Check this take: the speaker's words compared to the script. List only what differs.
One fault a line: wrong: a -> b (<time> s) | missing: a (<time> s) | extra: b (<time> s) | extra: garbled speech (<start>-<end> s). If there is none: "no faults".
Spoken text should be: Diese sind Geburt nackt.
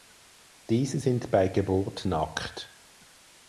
extra: bei (1.3 s)